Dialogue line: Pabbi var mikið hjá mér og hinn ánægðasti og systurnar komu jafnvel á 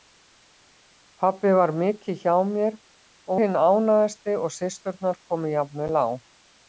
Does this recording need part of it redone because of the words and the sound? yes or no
no